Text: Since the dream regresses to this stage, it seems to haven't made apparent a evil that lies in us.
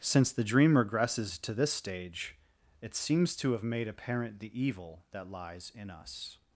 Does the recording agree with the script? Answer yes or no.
no